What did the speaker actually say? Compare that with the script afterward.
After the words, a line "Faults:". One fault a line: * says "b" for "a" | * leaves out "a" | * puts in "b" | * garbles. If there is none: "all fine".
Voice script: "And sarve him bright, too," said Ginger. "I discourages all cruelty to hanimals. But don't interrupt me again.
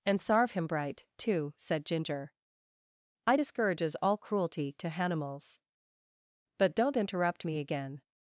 "And sarve him bright, too," said Ginger. "I discourages all cruelty to hanimals. But don't interrupt me again.
Faults:
all fine